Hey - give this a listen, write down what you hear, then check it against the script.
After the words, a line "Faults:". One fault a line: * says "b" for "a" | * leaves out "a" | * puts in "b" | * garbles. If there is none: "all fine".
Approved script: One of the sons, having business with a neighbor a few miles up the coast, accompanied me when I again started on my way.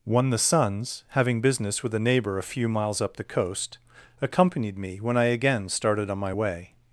One the sons, having business with a neighbor a few miles up the coast, accompanied me when I again started on my way.
Faults:
* leaves out "of"